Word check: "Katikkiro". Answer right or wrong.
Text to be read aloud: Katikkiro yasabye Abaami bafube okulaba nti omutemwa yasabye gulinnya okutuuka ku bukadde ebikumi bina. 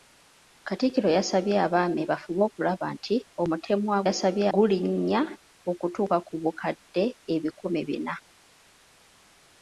right